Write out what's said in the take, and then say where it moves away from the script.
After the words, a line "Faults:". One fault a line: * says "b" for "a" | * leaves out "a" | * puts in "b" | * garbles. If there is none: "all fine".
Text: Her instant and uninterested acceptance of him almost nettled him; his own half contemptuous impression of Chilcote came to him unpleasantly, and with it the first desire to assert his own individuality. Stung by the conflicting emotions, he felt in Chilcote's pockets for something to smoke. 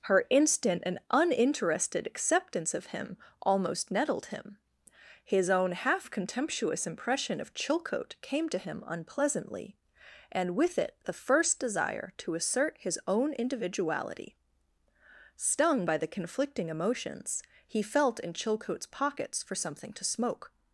Her instant and uninterested acceptance of him almost nettled him; his own half contemptuous impression of Chilcote came to him unpleasantly, and with it the first desire to assert his own individuality. Stung by the conflicting emotions, he felt in Chilcote's pockets for something to smoke.
Faults:
all fine